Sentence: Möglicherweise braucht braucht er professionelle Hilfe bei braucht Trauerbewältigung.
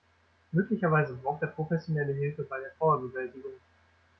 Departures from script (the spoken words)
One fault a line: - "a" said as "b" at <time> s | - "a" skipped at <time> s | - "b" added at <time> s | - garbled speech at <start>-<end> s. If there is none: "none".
- "braucht" skipped at 1.4 s
- "braucht" said as "der" at 2.6 s